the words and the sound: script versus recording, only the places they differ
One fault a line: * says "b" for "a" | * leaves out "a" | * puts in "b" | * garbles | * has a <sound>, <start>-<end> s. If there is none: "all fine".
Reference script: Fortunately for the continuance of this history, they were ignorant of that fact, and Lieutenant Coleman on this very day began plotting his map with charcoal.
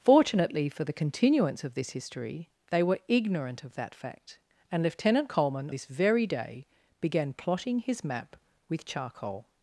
* leaves out "on"